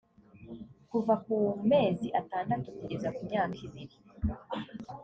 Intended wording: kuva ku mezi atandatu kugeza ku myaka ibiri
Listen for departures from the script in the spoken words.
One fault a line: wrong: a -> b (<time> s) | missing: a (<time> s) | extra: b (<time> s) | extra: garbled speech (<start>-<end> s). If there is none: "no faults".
no faults